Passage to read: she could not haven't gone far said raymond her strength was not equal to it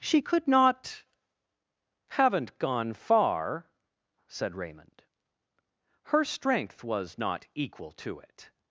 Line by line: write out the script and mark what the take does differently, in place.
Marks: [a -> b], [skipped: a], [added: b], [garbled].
she could not haven't gone far said raymond her strength was not equal to it